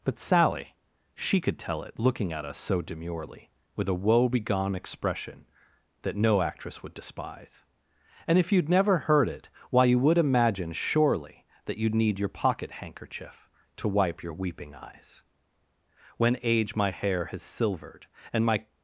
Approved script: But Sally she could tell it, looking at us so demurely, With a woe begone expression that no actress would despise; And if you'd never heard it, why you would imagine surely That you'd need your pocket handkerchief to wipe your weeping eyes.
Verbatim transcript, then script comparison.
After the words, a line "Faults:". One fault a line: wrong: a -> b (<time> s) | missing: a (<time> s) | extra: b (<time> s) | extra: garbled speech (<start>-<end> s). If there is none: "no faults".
But Sally she could tell it, looking at us so demurely, With a woe begone expression that no actress would despise; And if you'd never heard it, why you would imagine surely That you'd need your pocket handkerchief to wipe your weeping eyes. When age my hair has silvered, and my
Faults:
extra: When age my hair has silvered and my (16.2 s)